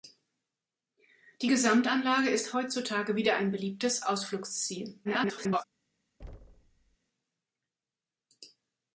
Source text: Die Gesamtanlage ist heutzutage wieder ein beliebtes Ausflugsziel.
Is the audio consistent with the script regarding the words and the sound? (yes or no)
no